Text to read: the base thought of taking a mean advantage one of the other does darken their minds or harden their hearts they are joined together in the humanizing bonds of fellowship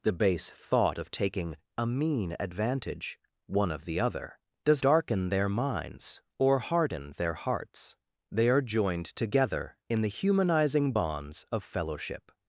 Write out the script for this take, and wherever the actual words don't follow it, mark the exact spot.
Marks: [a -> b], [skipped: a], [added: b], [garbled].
the base thought of taking a mean advantage one of the other does darken their minds or harden their hearts they are joined together in the humanizing bonds of fellowship